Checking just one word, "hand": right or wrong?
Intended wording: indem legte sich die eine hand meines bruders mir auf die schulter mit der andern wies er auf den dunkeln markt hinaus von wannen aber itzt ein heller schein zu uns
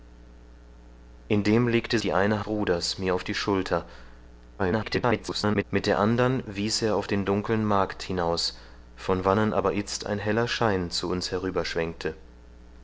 wrong